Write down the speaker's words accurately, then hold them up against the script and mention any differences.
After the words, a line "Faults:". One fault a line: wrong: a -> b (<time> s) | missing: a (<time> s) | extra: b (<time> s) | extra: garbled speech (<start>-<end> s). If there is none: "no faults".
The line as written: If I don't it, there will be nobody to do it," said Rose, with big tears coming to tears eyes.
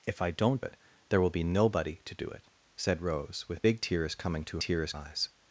If I don't it, there will be nobody to do it," said Rose, with big tears coming to tears eyes.
Faults:
no faults